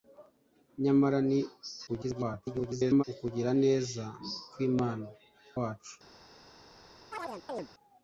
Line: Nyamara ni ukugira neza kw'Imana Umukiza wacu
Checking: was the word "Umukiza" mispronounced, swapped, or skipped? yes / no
yes